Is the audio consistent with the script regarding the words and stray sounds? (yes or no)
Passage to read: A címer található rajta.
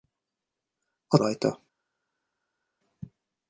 no